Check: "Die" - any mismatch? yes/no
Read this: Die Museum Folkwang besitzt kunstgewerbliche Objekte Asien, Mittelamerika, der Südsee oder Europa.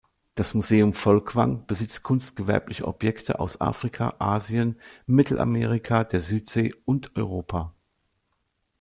yes